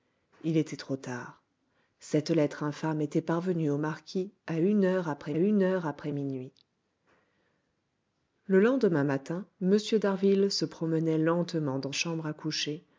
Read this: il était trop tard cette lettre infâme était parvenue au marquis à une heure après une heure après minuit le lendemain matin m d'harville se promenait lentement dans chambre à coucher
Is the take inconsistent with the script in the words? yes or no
no